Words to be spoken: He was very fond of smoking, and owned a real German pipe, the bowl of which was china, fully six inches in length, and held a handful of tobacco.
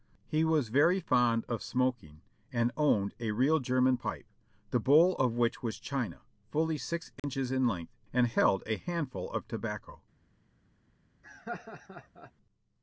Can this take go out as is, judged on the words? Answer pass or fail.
pass